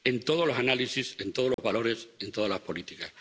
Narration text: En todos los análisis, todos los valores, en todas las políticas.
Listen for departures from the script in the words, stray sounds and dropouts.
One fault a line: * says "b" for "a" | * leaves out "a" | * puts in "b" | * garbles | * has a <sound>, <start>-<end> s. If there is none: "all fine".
* puts in "en"
* has a dropout, 1.5-1.6 s